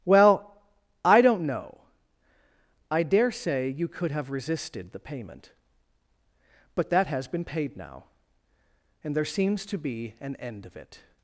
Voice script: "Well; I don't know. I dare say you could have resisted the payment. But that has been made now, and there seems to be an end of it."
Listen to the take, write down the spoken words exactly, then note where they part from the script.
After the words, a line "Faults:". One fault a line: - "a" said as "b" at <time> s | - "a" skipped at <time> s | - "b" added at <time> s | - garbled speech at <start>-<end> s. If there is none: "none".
"Well; I don't know. I dare say you could have resisted the payment. But that has been paid now, and there seems to be an end of it."
Faults:
- "made" said as "paid" at 7.4 s